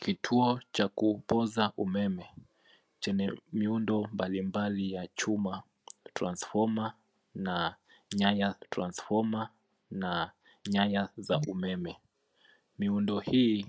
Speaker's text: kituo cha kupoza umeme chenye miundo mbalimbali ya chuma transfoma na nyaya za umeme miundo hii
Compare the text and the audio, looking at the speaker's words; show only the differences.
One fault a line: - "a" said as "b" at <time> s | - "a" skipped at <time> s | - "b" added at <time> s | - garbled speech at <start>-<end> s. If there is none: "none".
- "transfoma na nyaya" added at 8.7 s